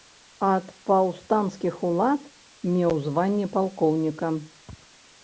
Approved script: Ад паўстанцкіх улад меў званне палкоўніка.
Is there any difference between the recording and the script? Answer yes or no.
no